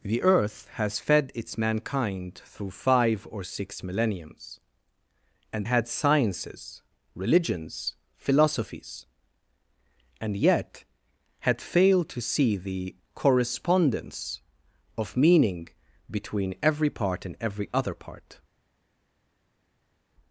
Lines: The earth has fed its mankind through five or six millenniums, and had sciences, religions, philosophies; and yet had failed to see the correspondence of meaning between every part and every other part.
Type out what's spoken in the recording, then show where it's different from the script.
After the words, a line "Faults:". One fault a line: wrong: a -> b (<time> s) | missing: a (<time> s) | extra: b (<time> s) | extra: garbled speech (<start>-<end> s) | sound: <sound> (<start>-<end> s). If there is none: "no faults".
The earth has fed its mankind through five or six millenniums, and had sciences, religions, philosophies; and yet had failed to see the correspondence of meaning between every part and every other part.
Faults:
no faults